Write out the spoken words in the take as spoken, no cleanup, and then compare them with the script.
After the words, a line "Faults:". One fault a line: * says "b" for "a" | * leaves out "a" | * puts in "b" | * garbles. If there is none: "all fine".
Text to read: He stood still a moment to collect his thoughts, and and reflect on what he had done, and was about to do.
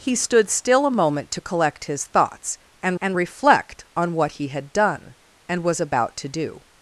He stood still a moment to collect his thoughts, and and reflect on what he had done, and was about to do.
Faults:
all fine